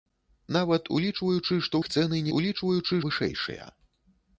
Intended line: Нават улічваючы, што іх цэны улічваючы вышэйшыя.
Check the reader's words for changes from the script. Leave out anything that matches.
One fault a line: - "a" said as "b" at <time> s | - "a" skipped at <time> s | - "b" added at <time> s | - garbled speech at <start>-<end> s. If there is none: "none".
none